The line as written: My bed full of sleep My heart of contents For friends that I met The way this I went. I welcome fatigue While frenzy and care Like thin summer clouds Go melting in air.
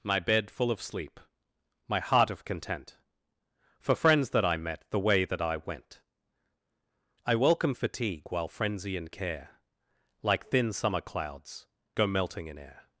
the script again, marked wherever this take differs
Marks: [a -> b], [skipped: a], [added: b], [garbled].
My bed full of sleep My heart of [contents -> content] For friends that I met The way [this -> that] I went. I welcome fatigue While frenzy and care Like thin summer clouds Go melting in air.